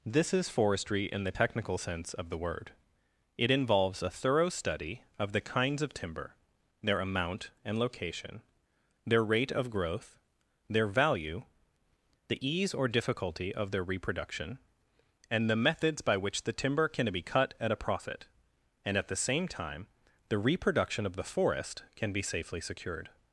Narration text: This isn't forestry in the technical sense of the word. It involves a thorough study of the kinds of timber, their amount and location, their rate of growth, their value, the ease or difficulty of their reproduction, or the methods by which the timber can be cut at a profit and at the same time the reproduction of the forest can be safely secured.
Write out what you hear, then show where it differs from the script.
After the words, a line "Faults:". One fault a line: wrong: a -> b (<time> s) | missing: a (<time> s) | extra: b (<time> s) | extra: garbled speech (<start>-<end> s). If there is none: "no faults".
This is forestry in the technical sense of the word. It involves a thorough study of the kinds of timber, their amount and location, their rate of growth, their value, the ease or difficulty of their reproduction, and the methods by which the timber can be cut at a profit and at the same time the reproduction of the forest can be safely secured.
Faults:
wrong: isn't -> is (0.3 s)
wrong: or -> and (15.3 s)